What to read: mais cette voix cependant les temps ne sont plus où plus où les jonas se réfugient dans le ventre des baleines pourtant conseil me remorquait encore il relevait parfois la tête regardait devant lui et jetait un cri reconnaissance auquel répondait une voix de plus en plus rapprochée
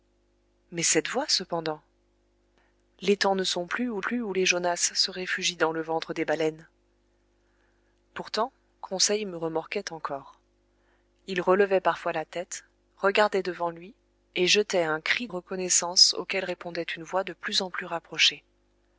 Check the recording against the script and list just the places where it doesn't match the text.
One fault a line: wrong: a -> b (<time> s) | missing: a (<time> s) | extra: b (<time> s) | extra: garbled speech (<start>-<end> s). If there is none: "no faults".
no faults